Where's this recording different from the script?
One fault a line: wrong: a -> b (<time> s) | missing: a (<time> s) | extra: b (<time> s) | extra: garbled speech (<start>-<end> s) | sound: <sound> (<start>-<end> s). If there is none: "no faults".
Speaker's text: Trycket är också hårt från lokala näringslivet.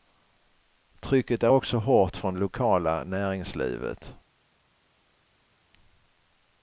no faults